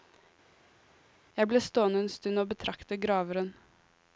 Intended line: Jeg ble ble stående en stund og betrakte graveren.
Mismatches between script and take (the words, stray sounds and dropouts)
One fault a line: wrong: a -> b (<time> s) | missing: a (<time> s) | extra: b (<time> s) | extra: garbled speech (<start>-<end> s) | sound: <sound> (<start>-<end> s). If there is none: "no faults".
missing: ble (1.6 s)